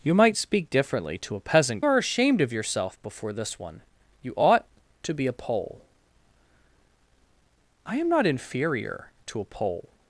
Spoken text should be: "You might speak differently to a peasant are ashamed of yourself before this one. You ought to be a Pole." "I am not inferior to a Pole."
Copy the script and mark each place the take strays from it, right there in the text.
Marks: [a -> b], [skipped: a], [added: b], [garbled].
"You might speak differently to a peasant are ashamed of yourself before this one. You ought to be a Pole." "I am not inferior to a Pole."